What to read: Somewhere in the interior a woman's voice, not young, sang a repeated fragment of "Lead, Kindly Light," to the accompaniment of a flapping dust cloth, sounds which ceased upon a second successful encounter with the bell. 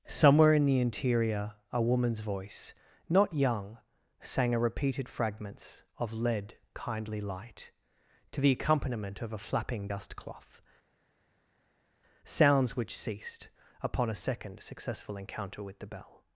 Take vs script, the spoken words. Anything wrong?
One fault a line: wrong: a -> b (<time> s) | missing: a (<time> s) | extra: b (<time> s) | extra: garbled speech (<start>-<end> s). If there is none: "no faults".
wrong: fragment -> fragments (5.1 s)